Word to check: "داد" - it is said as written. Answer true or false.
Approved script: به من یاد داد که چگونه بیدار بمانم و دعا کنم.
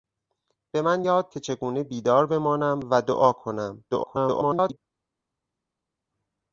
false